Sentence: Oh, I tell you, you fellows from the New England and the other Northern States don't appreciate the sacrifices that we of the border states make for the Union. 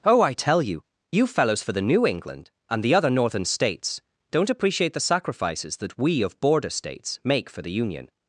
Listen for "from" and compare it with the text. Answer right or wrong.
wrong